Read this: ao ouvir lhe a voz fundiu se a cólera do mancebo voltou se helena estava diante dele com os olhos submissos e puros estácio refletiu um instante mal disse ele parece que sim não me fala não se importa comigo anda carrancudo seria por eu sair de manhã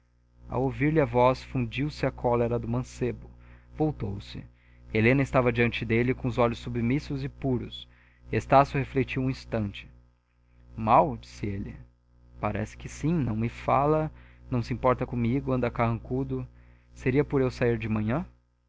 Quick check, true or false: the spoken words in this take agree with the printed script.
true